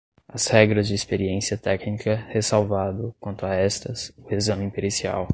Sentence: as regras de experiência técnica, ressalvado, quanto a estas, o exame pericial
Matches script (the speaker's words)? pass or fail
pass